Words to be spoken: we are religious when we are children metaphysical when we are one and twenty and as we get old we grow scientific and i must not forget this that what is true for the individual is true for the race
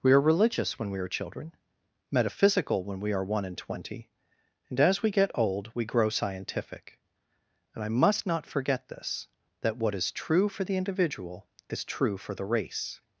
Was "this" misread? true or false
false